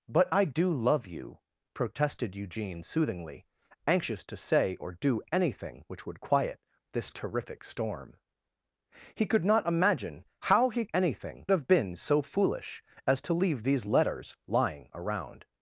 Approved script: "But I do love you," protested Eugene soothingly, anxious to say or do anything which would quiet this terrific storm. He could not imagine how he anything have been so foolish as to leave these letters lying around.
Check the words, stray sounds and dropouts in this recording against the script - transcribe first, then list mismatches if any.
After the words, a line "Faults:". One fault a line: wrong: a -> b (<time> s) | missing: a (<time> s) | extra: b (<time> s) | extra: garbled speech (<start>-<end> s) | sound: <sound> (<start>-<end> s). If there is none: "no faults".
"But I do love you," protested Eugene soothingly, anxious to say or do anything which would quiet this terrific storm. He could not imagine how he anything have been so foolish as to leave these letters lying around.
Faults:
no faults